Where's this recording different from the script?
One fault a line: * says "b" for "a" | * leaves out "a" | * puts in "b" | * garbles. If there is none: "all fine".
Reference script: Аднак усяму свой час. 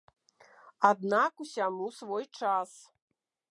all fine